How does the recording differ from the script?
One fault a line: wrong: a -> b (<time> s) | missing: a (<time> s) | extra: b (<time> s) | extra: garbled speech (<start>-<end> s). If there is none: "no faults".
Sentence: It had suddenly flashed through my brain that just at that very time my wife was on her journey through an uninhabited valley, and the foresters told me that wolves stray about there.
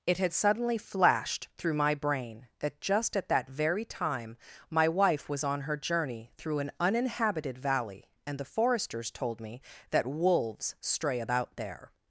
no faults